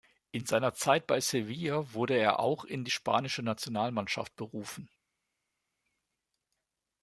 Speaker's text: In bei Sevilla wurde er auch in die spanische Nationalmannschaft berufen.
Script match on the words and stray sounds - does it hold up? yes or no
no